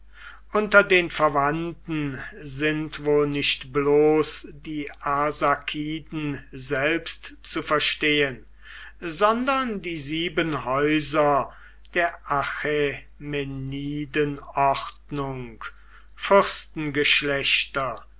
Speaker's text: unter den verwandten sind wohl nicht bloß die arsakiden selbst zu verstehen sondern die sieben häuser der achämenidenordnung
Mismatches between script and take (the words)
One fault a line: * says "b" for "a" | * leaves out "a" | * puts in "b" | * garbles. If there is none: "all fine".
all fine